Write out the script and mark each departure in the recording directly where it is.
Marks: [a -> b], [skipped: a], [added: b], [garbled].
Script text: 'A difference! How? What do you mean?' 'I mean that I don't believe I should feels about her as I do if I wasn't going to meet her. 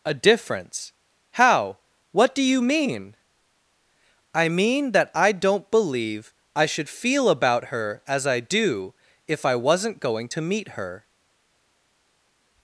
'A difference! How? What do you mean?' 'I mean that I don't believe I should [feels -> feel] about her as I do if I wasn't going to meet her.